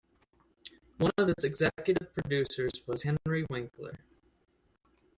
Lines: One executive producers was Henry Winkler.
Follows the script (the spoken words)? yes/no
no